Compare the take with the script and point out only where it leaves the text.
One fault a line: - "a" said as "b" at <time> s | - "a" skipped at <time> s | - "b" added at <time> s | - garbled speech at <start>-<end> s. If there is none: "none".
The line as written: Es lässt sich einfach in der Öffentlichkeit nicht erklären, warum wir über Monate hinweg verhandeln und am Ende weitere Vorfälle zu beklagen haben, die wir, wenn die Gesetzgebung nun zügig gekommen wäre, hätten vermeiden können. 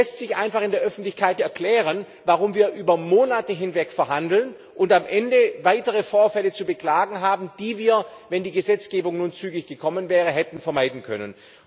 - "nicht" skipped at 1.4 s